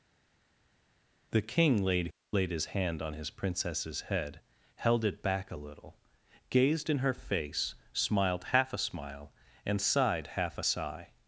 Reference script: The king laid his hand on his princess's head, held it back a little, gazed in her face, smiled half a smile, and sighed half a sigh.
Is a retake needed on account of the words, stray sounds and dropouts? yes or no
yes